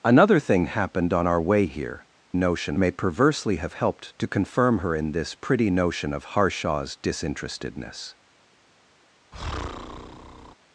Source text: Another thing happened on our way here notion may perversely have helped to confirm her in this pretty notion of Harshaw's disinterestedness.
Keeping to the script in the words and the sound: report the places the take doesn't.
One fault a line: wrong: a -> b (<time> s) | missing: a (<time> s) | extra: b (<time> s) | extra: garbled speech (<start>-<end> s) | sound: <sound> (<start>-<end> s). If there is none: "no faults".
sound: breath (9.3-10.5 s)